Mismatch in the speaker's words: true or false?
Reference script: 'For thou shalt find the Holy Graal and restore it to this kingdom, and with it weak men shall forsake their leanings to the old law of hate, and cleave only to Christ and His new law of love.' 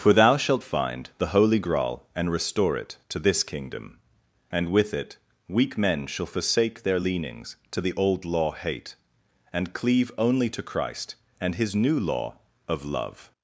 true